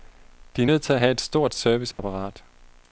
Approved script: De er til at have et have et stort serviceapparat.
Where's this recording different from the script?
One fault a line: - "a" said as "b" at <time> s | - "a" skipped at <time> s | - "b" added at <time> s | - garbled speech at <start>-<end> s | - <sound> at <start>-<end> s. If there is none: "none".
- "nødt" added at 0.6 s
- "have et" skipped at 1.2 s
- dropout at 1.9-2.0 s